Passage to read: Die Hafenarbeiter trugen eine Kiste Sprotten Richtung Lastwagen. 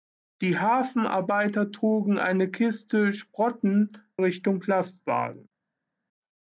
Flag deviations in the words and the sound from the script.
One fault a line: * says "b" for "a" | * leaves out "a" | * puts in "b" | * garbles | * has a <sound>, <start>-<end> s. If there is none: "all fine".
all fine